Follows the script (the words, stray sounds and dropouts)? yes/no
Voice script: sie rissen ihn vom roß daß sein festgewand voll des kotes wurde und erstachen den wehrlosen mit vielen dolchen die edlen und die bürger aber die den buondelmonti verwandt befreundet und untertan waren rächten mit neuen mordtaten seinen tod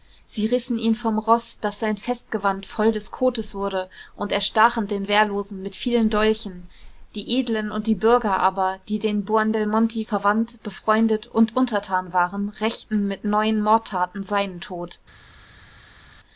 yes